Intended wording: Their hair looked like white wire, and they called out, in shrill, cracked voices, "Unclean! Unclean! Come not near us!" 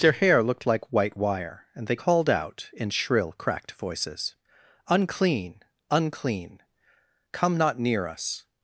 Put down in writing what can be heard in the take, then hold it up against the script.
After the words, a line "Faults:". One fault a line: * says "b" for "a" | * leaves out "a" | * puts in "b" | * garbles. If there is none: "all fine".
Their hair looked like white wire, and they called out, in shrill, cracked voices, "Unclean! Unclean! Come not near us!"
Faults:
all fine